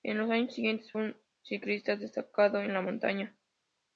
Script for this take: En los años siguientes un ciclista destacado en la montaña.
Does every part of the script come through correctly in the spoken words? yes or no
yes